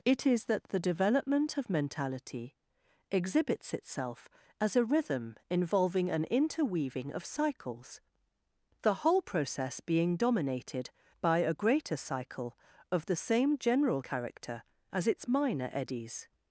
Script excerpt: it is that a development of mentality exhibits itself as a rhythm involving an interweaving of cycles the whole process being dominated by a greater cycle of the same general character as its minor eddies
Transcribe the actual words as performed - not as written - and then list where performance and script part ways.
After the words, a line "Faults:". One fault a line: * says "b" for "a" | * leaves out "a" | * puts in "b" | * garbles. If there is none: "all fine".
it is that the development of mentality exhibits itself as a rhythm involving an interweaving of cycles the whole process being dominated by a greater cycle of the same general character as its minor eddies
Faults:
* says "the" for "a"